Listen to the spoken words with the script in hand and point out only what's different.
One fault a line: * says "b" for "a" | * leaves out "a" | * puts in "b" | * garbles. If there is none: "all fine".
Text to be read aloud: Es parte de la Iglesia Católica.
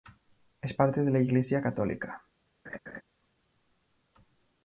all fine